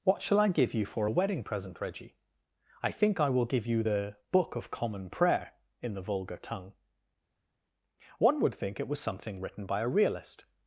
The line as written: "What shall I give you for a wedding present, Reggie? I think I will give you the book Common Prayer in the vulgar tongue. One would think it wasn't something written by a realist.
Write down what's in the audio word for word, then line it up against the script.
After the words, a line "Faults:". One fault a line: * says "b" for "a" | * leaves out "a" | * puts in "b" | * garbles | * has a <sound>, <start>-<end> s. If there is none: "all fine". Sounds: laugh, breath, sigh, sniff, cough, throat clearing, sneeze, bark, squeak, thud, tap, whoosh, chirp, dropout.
"What shall I give you for a wedding present, Reggie? I think I will give you the book of Common Prayer in the vulgar tongue. One would think it was something written by a realist.
Faults:
* puts in "of"
* says "was" for "wasn't"